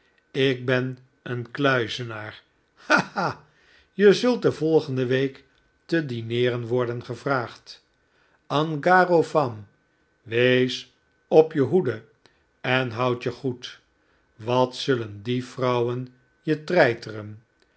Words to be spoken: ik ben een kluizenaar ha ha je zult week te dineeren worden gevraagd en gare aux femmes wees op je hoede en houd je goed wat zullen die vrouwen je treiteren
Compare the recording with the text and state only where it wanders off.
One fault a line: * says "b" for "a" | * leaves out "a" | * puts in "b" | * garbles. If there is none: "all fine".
* puts in "de volgende"